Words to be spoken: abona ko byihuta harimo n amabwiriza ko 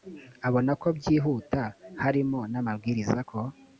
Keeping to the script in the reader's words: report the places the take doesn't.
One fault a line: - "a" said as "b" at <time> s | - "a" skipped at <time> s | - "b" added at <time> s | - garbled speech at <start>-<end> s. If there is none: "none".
none